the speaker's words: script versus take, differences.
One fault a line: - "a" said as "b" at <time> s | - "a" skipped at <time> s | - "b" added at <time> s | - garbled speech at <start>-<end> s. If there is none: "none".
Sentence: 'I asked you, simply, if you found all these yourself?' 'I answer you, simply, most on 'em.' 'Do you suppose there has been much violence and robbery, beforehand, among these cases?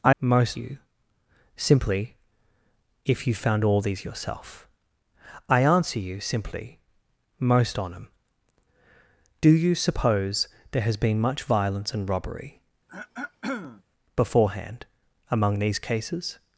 - "asked" said as "most" at 0.2 s